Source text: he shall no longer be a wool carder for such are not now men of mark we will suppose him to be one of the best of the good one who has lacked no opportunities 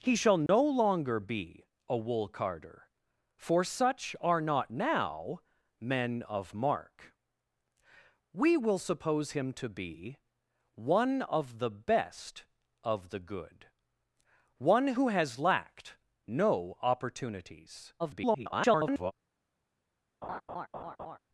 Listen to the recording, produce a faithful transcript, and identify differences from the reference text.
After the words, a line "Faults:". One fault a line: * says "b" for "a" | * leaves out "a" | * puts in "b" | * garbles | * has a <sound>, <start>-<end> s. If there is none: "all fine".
he shall no longer be a wool carder for such are not now men of mark we will suppose him to be one of the best of the good one who has lacked no opportunities [garbled]
Faults:
* has a dropout, 0.5-0.5 s
* garbles
* has a laugh, 20.2-21.2 s